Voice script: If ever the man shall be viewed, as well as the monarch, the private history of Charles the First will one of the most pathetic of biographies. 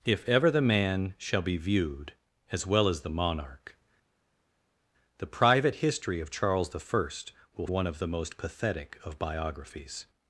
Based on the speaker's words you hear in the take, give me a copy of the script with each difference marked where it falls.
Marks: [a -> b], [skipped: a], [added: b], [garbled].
If ever the man shall be viewed, as well as the monarch, the private history of Charles the First will one of the most pathetic of biographies.